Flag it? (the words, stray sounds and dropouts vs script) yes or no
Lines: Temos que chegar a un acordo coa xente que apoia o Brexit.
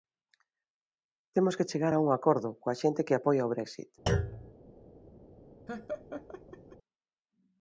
yes